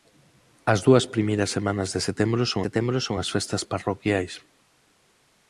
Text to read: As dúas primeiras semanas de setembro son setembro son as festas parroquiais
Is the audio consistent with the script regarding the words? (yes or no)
yes